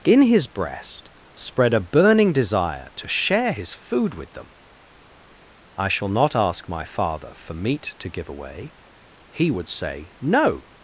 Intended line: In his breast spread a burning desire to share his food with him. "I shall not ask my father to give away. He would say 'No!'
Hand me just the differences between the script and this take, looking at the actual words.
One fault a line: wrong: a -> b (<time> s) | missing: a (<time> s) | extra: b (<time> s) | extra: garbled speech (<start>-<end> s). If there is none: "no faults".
wrong: him -> them (4.3 s)
extra: for meat (7.3 s)